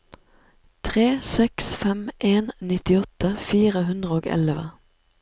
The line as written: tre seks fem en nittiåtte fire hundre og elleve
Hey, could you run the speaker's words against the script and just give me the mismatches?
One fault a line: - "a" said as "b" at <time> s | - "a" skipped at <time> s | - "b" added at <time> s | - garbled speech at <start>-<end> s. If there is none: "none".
none